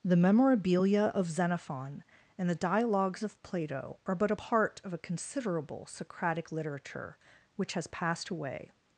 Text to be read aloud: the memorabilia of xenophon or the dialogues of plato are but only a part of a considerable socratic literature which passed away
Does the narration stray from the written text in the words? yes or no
yes